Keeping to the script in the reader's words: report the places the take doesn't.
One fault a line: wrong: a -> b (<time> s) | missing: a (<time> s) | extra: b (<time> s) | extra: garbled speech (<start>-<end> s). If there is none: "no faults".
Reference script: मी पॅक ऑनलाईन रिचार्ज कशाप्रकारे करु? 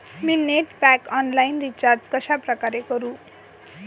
extra: नेट (0.3 s)